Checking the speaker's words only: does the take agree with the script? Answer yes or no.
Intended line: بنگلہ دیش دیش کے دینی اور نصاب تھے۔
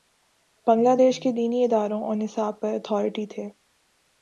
no